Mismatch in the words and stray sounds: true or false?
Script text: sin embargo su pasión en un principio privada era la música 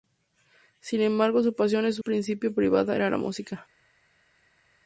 true